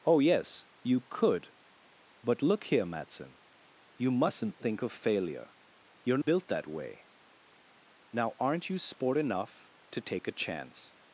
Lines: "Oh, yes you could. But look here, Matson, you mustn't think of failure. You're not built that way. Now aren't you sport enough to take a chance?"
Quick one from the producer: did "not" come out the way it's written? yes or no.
no